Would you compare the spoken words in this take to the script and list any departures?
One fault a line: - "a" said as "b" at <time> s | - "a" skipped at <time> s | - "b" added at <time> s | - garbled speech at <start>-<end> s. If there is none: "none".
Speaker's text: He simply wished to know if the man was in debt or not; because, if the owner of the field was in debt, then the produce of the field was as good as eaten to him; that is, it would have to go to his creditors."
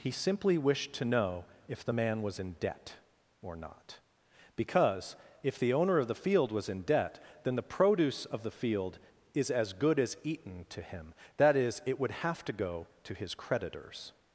- "was" said as "is" at 9.3 s